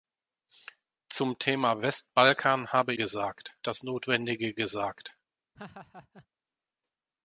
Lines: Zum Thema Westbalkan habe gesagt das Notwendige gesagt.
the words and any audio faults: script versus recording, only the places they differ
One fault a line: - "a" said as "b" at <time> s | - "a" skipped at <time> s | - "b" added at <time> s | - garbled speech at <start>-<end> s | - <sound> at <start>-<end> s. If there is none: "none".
- laugh at 5.6-6.3 s